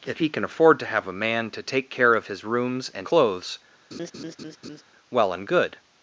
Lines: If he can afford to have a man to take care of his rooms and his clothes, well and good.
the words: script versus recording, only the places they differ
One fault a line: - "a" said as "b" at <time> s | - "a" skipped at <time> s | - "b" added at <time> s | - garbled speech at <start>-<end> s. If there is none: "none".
- "his" skipped at 3.1 s